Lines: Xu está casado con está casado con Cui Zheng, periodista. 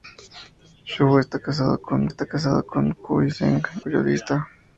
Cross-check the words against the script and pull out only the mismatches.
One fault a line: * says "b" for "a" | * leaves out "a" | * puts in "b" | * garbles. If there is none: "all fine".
all fine